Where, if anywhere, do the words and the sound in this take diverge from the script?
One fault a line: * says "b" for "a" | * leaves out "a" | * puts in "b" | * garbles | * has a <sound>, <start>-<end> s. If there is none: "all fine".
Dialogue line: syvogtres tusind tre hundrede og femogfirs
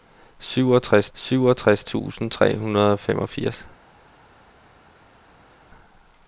* puts in "syvogtres"